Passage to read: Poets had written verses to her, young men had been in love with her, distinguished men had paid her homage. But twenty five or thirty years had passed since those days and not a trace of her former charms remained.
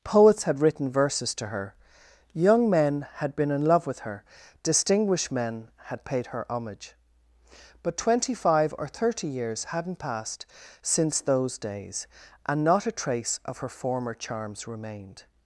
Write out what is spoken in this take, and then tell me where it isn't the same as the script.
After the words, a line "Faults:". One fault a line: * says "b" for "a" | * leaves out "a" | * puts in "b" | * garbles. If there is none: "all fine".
Poets had written verses to her, young men had been in love with her, distinguished men had paid her homage. But twenty five or thirty years hadn't passed since those days and not a trace of her former charms remained.
Faults:
* says "hadn't" for "had"